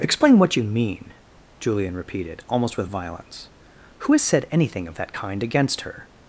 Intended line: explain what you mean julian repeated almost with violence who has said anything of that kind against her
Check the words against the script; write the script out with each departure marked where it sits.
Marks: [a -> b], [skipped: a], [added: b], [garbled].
explain what you mean julian repeated almost with violence who has said anything of that kind against her